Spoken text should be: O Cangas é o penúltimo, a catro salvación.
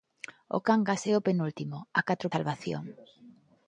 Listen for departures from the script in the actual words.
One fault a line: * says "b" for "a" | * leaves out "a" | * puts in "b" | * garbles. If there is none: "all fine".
all fine